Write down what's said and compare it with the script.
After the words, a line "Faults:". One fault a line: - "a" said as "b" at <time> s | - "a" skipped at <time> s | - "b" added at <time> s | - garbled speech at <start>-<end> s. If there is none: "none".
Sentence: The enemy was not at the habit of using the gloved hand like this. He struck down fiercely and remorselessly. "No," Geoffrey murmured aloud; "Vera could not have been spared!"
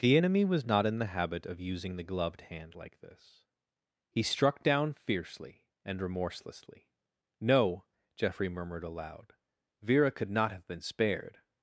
The enemy was not in the habit of using the gloved hand like this. He struck down fiercely and remorselessly. "No," Geoffrey murmured aloud; "Vera could not have been spared!"
Faults:
- "at" said as "in" at 0.9 s